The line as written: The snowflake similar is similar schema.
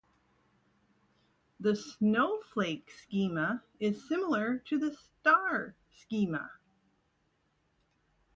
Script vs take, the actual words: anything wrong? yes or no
yes